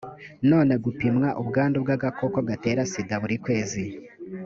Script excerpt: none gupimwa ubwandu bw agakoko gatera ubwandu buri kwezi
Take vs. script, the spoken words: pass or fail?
fail